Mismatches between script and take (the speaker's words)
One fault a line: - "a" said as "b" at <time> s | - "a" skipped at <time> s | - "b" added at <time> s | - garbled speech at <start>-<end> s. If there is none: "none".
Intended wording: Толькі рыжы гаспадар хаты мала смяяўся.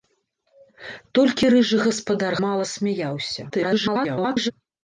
- "хаты" skipped at 2.3 s
- garbled speech at 3.5-4.5 s